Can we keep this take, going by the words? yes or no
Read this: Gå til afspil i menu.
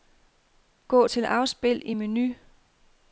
yes